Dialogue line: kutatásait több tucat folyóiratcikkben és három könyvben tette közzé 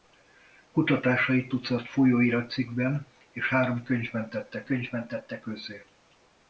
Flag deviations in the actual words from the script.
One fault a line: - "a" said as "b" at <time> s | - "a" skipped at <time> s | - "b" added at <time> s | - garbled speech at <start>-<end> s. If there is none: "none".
- "több" skipped at 1.5 s
- "könyvben tette" added at 4.6 s